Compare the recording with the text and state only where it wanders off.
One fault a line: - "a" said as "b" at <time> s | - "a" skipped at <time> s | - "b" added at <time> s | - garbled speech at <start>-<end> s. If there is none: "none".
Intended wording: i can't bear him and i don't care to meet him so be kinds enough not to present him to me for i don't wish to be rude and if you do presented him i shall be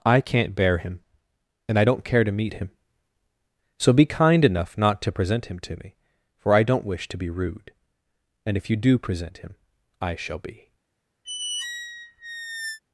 - "kinds" said as "kind" at 4.1 s
- "presented" said as "present" at 9.0 s